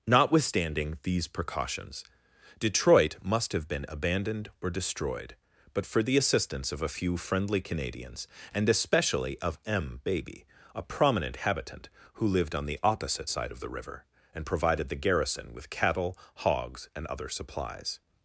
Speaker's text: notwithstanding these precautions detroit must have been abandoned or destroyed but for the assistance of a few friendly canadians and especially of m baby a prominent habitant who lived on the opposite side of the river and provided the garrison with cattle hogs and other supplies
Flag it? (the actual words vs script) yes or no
no